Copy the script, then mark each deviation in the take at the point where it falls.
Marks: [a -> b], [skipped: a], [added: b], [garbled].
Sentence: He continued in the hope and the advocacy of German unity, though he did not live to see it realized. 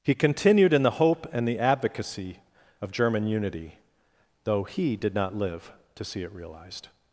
He continued in the hope and the advocacy of German unity, though he did not live to see it realized.